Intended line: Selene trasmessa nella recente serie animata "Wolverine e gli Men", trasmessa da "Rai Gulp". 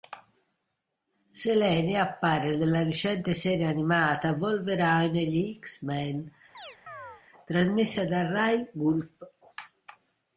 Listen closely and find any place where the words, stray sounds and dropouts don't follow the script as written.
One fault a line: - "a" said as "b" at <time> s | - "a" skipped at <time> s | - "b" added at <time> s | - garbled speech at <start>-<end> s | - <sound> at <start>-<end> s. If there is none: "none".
- "trasmessa" said as "appare" at 2.0 s
- "X" added at 5.6 s
- chirp at 6.5-7.2 s